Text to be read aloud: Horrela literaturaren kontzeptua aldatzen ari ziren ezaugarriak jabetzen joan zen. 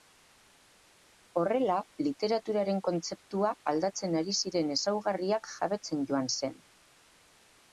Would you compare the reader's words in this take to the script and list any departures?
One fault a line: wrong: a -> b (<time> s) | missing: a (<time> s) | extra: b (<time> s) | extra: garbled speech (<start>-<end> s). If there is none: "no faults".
no faults